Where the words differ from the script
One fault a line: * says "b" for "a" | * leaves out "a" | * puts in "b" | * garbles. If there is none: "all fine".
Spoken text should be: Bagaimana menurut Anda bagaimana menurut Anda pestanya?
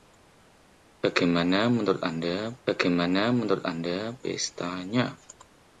all fine